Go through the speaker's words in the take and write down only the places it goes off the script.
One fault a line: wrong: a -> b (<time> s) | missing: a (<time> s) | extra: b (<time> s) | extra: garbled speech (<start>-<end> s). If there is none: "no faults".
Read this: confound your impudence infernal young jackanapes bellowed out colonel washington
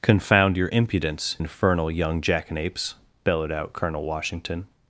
no faults